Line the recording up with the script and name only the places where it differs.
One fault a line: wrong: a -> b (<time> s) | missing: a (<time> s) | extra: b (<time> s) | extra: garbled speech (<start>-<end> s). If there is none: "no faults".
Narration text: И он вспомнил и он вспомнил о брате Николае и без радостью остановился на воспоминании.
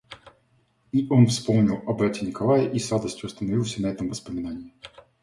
missing: и он вспомнил (1.8 s)
wrong: без -> с (2.8 s)
extra: этом (3.9 s)